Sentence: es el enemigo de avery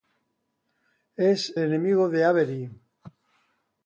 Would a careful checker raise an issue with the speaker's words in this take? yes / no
yes